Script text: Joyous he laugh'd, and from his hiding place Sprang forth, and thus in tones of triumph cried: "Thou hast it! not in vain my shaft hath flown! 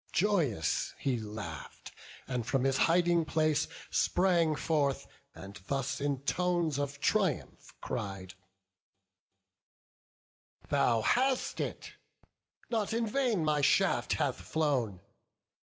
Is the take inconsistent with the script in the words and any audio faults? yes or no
no